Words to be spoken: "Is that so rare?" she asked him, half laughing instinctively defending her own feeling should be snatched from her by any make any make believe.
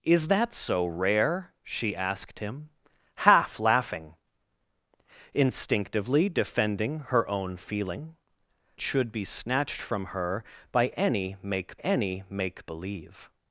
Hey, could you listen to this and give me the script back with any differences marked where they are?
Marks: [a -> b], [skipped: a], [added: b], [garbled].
"Is that so rare?" she asked him, half laughing instinctively defending her own feeling should be snatched from her by any make any make believe.